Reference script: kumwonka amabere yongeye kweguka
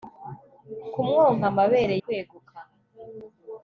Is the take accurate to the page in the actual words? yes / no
no